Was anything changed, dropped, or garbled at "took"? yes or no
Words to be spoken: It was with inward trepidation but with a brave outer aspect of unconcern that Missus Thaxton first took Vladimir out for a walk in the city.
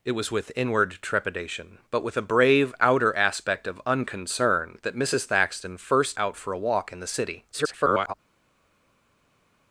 yes